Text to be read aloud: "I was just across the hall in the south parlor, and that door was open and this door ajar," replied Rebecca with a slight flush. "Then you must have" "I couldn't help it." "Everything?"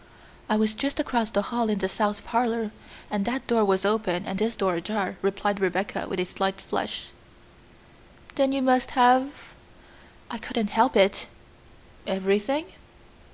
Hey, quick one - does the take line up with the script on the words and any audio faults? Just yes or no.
yes